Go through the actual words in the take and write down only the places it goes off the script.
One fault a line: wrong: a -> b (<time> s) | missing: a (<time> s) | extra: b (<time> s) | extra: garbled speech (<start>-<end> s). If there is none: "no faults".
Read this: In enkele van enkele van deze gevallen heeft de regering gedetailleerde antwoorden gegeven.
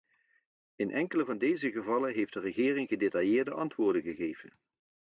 missing: enkele van (1.4 s)